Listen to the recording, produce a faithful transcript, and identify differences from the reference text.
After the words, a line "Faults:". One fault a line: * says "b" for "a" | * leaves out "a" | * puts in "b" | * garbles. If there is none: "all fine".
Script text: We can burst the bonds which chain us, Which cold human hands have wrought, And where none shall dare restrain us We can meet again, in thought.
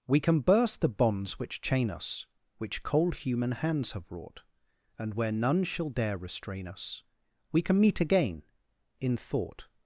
We can burst the bonds which chain us, Which cold human hands have wrought, And where none shall dare restrain us We can meet again, in thought.
Faults:
all fine